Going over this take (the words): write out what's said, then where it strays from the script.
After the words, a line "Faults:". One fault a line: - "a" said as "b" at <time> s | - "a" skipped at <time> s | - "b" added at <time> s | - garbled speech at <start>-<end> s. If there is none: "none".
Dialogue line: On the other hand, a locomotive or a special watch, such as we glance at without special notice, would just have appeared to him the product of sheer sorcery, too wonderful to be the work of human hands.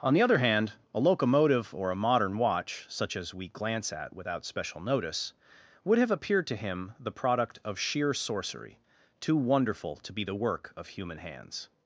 On the other hand, a locomotive or a modern watch, such as we glance at without special notice, would have appeared to him the product of sheer sorcery, too wonderful to be the work of human hands.
Faults:
- "special" said as "modern" at 1.9 s
- "just" skipped at 6.0 s